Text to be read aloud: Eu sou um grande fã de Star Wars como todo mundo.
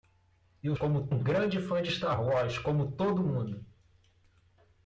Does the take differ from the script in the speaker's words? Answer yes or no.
yes